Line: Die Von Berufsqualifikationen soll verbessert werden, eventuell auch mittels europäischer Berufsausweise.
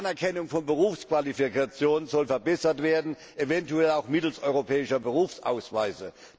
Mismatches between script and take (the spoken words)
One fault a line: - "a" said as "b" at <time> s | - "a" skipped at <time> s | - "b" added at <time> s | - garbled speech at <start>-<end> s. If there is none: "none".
- "Anerkennung" added at 0.1 s